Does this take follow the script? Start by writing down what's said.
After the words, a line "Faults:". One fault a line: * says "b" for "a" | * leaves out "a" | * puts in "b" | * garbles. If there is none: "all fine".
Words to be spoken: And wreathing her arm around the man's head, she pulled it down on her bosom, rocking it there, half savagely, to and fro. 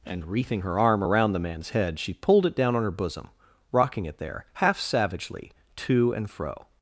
And wreathing her arm around the man's head, she pulled it down on her bosom, rocking it there, half savagely, to and fro.
Faults:
all fine